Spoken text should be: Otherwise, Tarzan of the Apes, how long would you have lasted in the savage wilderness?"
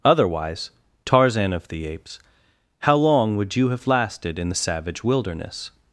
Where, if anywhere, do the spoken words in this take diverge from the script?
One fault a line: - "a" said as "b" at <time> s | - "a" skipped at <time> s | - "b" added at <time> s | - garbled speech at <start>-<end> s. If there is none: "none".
none